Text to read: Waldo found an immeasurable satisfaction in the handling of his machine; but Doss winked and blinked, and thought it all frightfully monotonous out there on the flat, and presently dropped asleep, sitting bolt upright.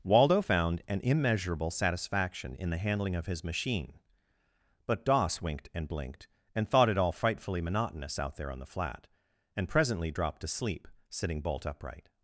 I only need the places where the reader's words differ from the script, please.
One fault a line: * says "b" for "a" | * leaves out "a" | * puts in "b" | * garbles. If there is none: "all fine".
* says "to sleep" for "asleep"